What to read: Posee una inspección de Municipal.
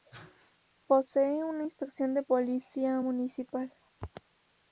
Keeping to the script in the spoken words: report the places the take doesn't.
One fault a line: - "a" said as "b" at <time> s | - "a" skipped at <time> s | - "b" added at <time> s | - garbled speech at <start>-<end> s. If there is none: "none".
- "policía" added at 2.2 s